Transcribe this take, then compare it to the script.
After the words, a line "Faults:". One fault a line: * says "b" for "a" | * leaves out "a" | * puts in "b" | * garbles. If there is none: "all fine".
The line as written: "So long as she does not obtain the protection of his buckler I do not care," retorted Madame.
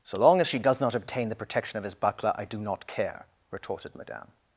"So long as she does not obtain the protection of his buckler I do not care," retorted Madame.
Faults:
all fine